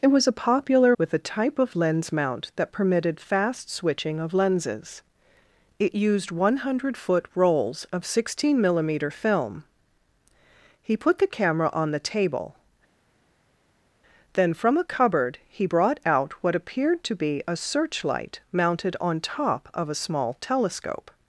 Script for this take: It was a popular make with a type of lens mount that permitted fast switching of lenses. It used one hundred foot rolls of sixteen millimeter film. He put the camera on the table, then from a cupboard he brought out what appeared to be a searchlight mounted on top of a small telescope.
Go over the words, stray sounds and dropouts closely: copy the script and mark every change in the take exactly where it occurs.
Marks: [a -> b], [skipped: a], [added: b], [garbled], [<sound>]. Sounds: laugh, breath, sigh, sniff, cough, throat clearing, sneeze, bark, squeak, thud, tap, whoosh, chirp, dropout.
It was a popular [skipped: make] with a type of lens mount that permitted fast switching of lenses. It used one hundred foot rolls of sixteen millimeter film. He put the camera on the table, then from a cupboard he brought out what appeared to be a searchlight mounted on top of a small telescope.